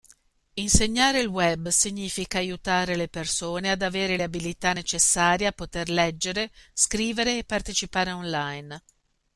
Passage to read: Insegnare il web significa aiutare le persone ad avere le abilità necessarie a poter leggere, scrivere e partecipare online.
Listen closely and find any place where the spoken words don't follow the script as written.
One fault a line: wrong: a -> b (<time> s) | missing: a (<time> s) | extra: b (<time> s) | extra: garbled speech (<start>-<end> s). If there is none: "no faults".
no faults